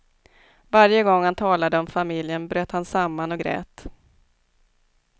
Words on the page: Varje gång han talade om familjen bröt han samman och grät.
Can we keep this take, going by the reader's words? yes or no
yes